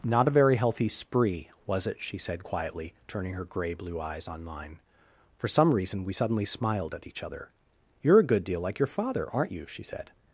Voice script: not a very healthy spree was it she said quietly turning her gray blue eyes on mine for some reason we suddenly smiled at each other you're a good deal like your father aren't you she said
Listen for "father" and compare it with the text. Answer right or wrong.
right